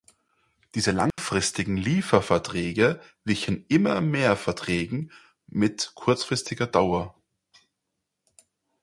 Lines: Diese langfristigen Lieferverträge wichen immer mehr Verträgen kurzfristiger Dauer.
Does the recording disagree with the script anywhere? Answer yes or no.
yes